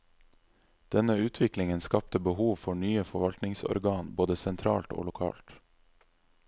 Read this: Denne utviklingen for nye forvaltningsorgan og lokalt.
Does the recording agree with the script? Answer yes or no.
no